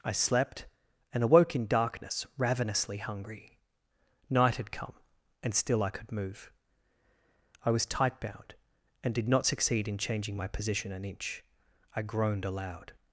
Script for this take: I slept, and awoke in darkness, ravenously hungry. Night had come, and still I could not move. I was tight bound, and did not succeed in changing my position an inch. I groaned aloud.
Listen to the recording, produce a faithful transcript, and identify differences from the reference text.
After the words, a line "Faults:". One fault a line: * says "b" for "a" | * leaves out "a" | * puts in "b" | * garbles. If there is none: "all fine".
I slept, and awoke in darkness, ravenously hungry. Night had come, and still I could move. I was tight bound, and did not succeed in changing my position an inch. I groaned aloud.
Faults:
* leaves out "not"